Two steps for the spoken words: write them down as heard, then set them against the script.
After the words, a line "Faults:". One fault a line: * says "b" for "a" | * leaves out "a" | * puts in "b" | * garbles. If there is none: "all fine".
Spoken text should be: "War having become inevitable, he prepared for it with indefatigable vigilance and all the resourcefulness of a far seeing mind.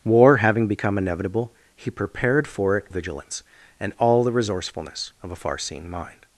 "War having become inevitable, he prepared for it vigilance and all the resourcefulness of a far seeing mind.
Faults:
* leaves out "with indefatigable"